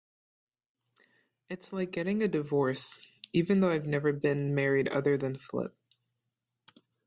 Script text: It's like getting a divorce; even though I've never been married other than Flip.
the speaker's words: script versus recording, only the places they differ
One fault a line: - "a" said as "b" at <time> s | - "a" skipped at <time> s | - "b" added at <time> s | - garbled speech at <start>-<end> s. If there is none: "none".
none